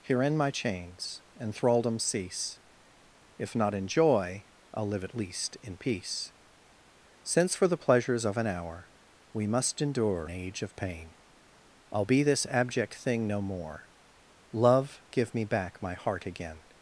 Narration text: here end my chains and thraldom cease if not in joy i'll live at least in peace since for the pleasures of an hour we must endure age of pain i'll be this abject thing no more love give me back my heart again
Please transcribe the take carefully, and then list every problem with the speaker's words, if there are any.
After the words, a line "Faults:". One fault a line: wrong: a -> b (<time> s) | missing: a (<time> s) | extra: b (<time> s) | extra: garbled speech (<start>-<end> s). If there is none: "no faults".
here end my chains and thraldom cease if not in joy i'll live at least in peace since for the pleasures of an hour we must endure age of pain i'll be this abject thing no more love give me back my heart again
Faults:
no faults